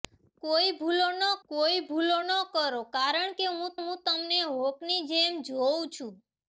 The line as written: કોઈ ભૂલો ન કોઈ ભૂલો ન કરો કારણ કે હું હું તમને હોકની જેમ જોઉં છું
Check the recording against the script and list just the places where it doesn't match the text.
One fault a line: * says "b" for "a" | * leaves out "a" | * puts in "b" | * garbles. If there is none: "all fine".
all fine